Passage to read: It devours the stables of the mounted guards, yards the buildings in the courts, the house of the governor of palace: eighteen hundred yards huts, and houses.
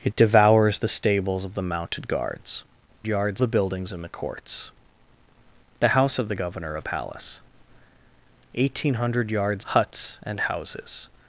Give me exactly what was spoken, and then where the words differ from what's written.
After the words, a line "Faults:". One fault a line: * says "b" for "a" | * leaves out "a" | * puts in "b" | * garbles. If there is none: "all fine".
It devours the stables of the mounted guards, yards the buildings in the courts, the house of the governor of palace: eighteen hundred yards huts, and houses.
Faults:
all fine